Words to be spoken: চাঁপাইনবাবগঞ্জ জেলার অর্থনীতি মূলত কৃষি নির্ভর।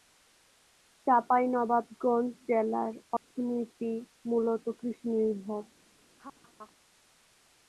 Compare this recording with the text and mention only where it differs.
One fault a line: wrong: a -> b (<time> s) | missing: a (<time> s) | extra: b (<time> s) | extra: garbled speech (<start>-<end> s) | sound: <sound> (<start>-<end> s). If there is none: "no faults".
sound: dropout (3.2-3.3 s)
sound: laugh (6.2-6.7 s)